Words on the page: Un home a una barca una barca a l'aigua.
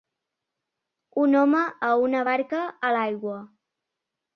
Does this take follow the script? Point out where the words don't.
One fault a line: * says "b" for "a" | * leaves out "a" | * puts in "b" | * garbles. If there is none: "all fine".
* leaves out "una barca"